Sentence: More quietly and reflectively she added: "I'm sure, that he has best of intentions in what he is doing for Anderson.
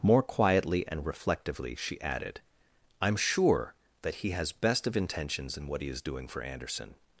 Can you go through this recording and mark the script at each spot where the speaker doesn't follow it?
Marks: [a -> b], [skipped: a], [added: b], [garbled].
More quietly and reflectively she added: "I'm sure, that he has best of intentions in what he is doing for Anderson.